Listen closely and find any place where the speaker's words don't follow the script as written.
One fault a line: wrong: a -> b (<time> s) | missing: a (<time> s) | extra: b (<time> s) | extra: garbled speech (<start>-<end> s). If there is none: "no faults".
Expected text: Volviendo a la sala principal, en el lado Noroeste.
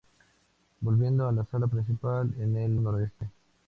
missing: lado (2.8 s)